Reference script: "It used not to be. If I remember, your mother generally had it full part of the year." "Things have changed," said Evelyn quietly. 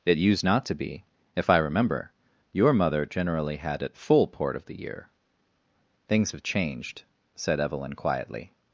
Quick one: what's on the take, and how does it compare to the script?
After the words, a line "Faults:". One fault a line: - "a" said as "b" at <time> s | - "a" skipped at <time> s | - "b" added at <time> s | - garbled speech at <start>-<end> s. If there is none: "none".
"It used not to be. If I remember, your mother generally had it full port of the year." "Things have changed," said Evelyn quietly.
Faults:
- "part" said as "port" at 4.3 s